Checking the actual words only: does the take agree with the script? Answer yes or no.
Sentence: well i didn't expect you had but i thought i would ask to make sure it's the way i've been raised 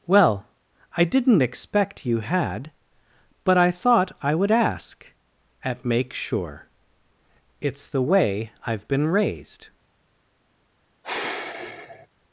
no